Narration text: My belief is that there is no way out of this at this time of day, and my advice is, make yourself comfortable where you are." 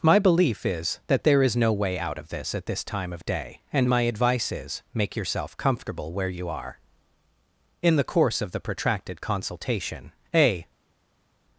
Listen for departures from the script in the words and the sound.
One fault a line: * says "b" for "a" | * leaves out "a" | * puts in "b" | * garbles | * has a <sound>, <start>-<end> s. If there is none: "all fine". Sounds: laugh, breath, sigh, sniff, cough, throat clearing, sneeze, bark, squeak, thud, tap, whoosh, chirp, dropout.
* puts in "In the course of the protracted consultation a"